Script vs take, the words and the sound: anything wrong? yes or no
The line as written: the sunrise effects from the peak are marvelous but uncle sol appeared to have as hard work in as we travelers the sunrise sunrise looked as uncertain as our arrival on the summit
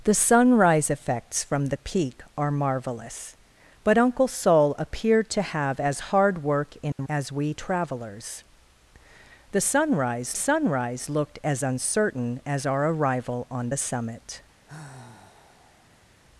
yes